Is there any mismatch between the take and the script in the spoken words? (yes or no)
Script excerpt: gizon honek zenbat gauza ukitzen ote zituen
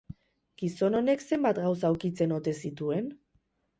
no